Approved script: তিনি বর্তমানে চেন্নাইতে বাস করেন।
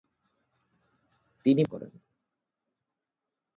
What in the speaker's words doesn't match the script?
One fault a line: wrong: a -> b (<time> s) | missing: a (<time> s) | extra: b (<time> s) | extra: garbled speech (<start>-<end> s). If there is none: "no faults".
missing: বর্তমানে চেন্নাইতে বাস (1.6 s)